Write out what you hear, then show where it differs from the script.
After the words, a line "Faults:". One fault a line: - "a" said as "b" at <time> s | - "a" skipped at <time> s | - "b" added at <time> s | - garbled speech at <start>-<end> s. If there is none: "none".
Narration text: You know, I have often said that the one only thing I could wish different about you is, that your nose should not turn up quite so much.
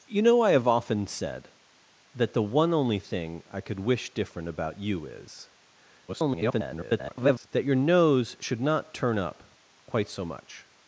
You know, I have often said that the one only thing I could wish different about you is, [garbled] that your nose should not turn up quite so much.
Faults:
- garbled speech at 6.1-7.5 s